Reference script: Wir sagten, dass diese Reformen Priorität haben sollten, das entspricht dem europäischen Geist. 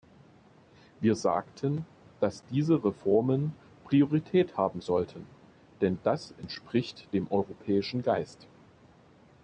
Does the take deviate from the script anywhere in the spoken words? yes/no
yes